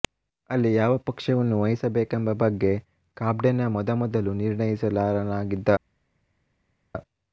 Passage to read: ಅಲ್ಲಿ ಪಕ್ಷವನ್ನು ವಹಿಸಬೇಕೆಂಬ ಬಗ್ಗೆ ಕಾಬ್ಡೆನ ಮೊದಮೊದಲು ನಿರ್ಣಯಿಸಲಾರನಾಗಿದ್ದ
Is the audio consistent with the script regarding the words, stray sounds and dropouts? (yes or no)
no